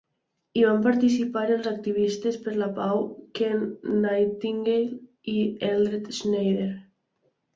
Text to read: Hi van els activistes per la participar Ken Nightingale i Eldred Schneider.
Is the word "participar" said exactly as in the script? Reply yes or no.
no